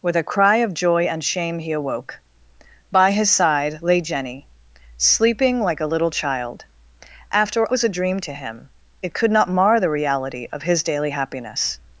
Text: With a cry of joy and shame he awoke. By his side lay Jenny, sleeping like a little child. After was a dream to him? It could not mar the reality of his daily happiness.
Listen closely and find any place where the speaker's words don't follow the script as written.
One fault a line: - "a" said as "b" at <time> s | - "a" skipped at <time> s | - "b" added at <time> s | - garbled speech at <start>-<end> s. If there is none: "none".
none